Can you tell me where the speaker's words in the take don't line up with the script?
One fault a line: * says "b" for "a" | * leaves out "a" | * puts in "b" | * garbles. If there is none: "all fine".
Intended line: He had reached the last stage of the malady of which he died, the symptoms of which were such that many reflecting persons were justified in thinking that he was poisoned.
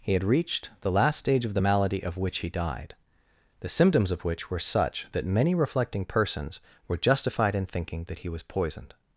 all fine